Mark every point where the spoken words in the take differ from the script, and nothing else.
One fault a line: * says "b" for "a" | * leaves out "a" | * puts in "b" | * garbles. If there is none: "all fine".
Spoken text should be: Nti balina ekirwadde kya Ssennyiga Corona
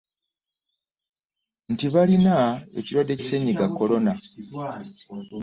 * leaves out "kya"